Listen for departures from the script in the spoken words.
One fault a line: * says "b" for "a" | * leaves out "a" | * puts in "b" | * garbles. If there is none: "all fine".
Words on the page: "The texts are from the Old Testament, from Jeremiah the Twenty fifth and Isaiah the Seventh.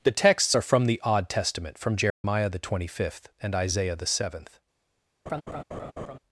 * says "Odd" for "Old"